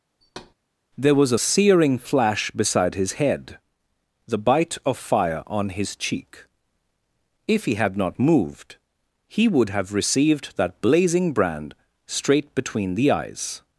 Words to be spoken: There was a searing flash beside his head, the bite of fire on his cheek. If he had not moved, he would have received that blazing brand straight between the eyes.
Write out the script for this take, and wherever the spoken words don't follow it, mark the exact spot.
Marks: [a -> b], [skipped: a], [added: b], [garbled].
There was a searing flash beside his head, the bite of fire on his cheek. If he had not moved, he would have received that blazing brand straight between the eyes.